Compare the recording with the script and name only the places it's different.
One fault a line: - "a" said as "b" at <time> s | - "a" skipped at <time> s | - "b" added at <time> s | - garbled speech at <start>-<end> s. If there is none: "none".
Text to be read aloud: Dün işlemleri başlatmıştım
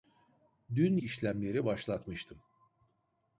none